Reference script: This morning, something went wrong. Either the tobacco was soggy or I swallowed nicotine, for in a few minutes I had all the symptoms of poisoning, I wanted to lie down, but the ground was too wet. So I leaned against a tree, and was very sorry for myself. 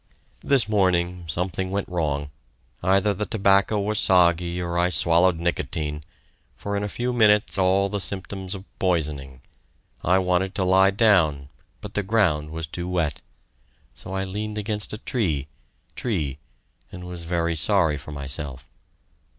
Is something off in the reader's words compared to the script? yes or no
yes